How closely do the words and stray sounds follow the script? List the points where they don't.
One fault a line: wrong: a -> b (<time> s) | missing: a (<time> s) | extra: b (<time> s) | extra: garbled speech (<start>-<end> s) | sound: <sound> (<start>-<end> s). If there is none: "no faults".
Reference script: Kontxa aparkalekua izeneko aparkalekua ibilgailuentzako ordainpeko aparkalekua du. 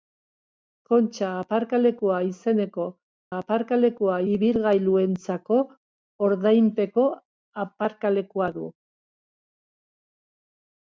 no faults